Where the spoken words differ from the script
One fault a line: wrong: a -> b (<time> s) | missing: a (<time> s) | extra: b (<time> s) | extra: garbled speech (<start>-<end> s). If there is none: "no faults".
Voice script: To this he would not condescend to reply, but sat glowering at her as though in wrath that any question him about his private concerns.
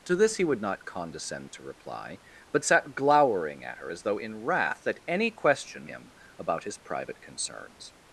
no faults